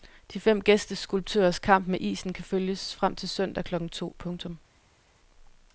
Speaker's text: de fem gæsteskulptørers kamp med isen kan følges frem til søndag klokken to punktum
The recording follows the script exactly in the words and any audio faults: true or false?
true